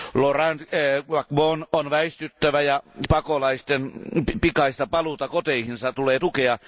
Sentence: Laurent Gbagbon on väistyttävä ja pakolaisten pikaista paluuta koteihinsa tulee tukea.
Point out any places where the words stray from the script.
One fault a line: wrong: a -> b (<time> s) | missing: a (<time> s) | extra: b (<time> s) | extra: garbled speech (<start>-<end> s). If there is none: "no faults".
no faults